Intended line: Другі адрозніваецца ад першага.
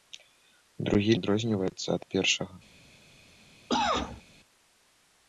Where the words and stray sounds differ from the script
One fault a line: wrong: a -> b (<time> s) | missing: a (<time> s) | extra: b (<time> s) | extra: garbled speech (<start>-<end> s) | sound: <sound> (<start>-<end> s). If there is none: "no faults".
sound: cough (3.7-4.2 s)